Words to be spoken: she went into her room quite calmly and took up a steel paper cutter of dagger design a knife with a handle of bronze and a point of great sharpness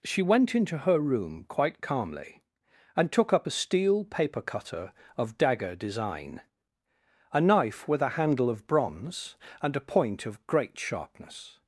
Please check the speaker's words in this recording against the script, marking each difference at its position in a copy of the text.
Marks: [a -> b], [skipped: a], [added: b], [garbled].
she went into her room quite calmly and took up a steel paper cutter of dagger design a knife with a handle of bronze and a point of great sharpness